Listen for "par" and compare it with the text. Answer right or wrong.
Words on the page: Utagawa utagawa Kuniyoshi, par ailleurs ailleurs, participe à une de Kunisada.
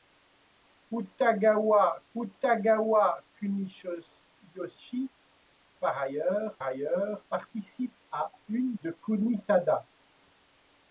right